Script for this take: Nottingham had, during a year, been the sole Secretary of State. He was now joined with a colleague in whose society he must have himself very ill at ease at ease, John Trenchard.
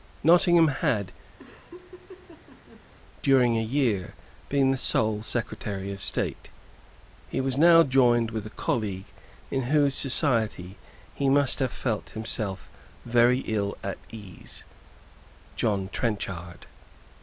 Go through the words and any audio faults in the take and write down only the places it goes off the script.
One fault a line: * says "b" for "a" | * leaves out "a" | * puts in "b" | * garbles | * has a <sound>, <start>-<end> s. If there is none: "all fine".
* has a laugh, 1.4-2.8 s
* puts in "felt"
* leaves out "at ease"